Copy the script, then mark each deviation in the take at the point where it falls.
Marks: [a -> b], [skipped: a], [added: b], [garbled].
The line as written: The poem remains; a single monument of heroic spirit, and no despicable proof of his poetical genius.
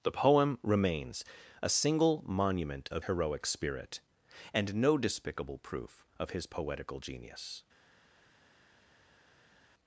The poem remains; a single monument of heroic spirit, and no despicable proof of his poetical genius.